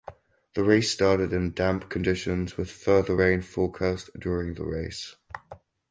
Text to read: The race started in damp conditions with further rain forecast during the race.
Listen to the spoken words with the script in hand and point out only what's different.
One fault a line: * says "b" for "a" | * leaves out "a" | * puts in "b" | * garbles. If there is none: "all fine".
all fine